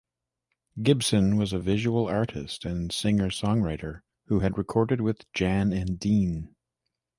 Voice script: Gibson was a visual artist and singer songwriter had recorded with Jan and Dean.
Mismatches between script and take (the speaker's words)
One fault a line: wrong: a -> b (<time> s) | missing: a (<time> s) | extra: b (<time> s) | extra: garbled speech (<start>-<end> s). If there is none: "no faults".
extra: who (4.3 s)